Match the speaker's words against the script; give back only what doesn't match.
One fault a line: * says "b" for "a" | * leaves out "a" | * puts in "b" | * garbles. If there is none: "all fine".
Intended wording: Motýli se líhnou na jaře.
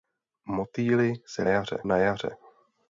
* says "jaře" for "líhnou"